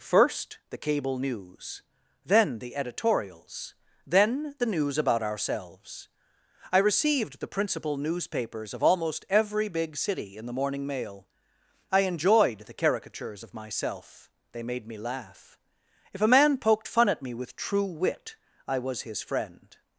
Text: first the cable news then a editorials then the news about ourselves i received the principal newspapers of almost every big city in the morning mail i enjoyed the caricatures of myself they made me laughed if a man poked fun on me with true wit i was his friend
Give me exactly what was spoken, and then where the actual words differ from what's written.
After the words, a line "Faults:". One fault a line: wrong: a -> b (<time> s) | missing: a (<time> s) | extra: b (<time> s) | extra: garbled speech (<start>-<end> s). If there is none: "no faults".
first the cable news then the editorials then the news about ourselves i received the principal newspapers of almost every big city in the morning mail i enjoyed the caricatures of myself they made me laugh if a man poked fun at me with true wit i was his friend
Faults:
wrong: a -> the (2.6 s)
wrong: laughed -> laugh (15.0 s)
wrong: on -> at (17.1 s)